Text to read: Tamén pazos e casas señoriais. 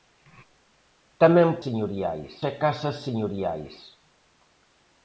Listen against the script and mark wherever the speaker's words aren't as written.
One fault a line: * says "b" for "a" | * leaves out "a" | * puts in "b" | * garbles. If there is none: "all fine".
* says "señoriais" for "pazos"